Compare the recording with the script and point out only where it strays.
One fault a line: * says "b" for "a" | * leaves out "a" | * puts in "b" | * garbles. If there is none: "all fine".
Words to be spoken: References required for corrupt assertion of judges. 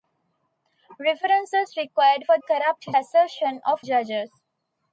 all fine